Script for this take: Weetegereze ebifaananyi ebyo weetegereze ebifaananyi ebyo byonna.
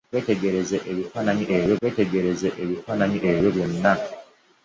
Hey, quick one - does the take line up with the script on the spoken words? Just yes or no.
yes